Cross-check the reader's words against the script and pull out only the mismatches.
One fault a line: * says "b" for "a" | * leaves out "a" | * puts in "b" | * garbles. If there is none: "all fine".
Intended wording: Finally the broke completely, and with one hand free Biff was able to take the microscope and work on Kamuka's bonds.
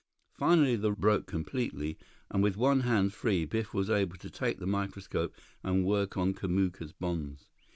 all fine